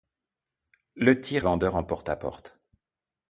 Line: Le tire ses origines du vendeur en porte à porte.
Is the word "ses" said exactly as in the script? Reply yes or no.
no